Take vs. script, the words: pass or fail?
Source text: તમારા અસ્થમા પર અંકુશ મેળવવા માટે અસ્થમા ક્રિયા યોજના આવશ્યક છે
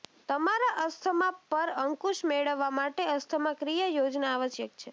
pass